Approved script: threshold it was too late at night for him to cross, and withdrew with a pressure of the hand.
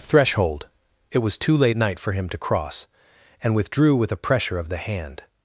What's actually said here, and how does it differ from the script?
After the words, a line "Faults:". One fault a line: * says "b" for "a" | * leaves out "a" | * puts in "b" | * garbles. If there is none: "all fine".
threshold it was too late night for him to cross, and withdrew with a pressure of the hand.
Faults:
* leaves out "at"